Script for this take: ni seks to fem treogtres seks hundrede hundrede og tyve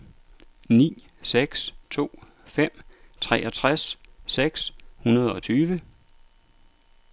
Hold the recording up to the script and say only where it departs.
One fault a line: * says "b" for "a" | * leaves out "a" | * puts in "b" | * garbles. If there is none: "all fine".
* leaves out "hundrede"